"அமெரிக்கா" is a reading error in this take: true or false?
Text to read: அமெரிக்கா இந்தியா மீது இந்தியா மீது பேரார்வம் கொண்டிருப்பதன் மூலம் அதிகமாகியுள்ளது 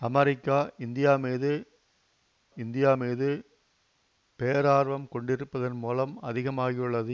false